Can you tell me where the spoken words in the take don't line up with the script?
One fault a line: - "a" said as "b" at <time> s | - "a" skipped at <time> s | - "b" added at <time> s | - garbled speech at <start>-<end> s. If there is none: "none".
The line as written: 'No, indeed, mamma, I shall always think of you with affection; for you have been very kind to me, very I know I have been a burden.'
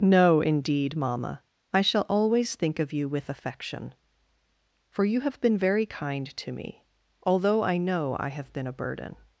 - "very" said as "although" at 7.2 s